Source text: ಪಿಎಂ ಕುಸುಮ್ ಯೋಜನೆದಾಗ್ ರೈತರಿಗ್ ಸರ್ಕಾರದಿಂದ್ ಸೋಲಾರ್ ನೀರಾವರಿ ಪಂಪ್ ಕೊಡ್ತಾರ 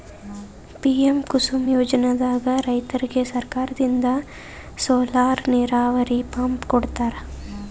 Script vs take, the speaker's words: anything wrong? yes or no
no